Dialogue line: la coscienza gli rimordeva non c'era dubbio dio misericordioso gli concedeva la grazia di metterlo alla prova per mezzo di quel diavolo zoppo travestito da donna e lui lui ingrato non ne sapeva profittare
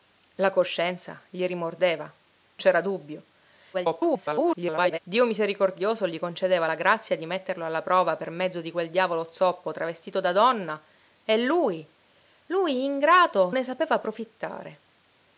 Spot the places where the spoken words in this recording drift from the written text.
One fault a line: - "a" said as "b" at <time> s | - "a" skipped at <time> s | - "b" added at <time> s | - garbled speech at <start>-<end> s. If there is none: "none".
- "non" skipped at 2.1 s
- garbled speech at 3.7-5.0 s
- "non" skipped at 13.5 s